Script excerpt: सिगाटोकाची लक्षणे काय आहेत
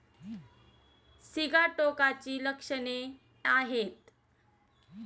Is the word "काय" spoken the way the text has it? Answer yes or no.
no